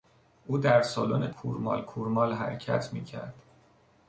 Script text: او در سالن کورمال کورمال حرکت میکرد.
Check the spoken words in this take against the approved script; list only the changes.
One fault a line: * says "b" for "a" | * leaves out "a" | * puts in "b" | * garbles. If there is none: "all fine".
all fine